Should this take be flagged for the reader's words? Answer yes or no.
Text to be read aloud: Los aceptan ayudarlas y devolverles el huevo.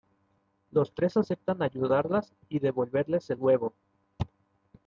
yes